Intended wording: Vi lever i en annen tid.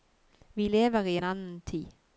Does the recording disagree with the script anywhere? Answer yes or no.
no